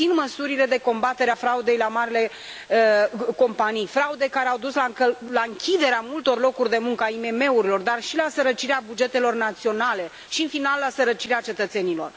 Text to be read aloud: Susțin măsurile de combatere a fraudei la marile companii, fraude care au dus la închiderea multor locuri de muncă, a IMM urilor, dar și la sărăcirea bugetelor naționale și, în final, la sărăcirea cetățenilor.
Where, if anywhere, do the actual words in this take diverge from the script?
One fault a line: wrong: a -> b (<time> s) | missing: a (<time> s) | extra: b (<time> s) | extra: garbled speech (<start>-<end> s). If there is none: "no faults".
no faults